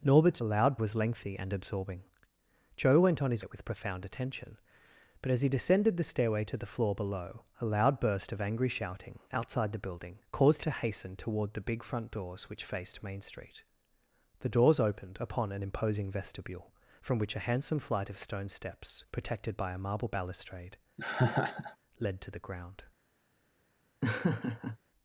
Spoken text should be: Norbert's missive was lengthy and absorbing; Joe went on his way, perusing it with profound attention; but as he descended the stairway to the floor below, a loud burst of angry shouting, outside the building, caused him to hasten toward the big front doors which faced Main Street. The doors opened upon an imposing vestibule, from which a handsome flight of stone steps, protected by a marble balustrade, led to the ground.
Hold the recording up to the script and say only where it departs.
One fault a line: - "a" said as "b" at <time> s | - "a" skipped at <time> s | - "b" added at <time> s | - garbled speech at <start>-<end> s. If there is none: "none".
- "missive" said as "loud" at 0.4 s
- "way perusing" skipped at 3.4 s
- "him" skipped at 10.6 s